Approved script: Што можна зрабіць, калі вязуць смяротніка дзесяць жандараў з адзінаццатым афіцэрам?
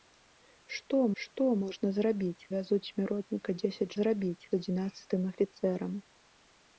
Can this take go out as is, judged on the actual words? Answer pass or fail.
fail